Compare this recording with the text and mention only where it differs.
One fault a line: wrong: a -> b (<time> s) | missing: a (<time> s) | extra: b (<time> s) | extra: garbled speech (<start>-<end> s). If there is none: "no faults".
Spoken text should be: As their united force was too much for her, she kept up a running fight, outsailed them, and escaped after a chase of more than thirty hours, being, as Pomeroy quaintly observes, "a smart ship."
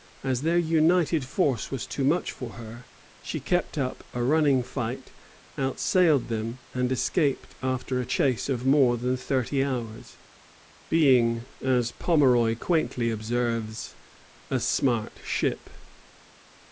no faults